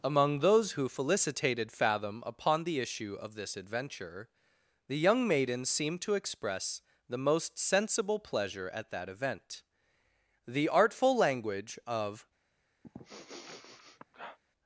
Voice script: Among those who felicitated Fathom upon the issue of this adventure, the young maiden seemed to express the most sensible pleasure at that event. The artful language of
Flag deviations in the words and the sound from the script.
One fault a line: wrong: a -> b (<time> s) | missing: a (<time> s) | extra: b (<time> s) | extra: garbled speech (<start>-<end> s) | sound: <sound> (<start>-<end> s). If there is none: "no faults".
sound: sniff (12.8-14.4 s)